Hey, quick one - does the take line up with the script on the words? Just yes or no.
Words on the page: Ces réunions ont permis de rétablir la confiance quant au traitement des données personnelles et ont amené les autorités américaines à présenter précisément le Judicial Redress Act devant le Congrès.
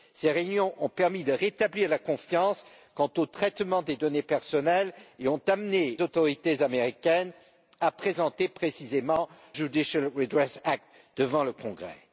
no